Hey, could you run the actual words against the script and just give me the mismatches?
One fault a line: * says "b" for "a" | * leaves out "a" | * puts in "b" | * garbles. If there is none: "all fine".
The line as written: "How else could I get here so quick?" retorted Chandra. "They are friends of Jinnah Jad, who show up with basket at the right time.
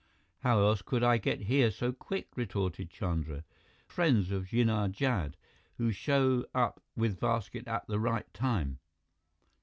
* leaves out "They are"